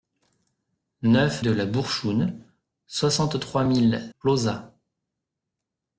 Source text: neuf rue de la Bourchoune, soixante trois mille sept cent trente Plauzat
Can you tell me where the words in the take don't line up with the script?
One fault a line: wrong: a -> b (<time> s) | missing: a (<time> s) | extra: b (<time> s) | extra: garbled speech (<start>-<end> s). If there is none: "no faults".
missing: rue (1.4 s)
missing: sept cent trente (4.1 s)